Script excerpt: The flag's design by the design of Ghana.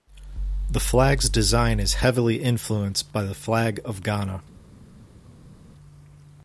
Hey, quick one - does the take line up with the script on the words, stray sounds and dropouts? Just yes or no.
no